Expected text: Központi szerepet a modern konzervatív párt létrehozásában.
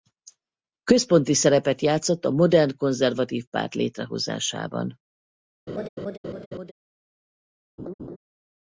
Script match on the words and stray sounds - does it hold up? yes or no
no